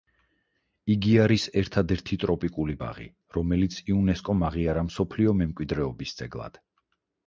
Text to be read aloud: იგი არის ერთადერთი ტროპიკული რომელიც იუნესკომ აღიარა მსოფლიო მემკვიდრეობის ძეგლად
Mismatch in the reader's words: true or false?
true